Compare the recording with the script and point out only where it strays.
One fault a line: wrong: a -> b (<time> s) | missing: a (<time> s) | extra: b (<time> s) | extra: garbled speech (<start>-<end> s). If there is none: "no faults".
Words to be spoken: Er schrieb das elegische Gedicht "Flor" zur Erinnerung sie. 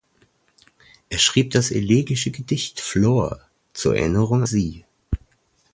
no faults